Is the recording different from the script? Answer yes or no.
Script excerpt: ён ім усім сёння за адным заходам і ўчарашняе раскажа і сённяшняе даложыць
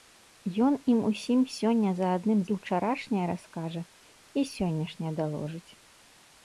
yes